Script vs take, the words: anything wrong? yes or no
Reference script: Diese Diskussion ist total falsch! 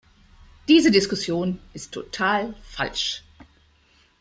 no